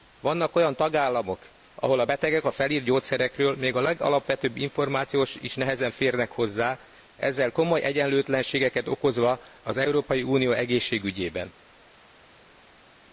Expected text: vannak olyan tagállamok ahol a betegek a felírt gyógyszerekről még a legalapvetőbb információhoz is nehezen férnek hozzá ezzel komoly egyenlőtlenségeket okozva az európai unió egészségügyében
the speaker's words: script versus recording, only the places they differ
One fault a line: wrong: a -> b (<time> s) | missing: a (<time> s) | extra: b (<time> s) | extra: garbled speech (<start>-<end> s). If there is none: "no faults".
no faults